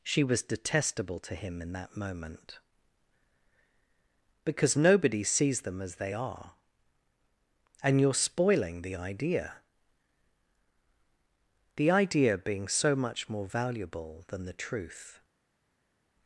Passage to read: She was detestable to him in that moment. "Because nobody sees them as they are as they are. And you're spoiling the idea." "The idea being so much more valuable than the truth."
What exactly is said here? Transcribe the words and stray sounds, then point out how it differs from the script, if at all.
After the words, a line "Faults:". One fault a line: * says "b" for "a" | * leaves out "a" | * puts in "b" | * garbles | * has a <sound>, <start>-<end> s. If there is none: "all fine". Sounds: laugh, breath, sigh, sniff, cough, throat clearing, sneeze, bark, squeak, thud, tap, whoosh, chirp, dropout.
She was detestable to him in that moment. "Because nobody sees them as they are. And you're spoiling the idea." "The idea being so much more valuable than the truth."
Faults:
* leaves out "as they are"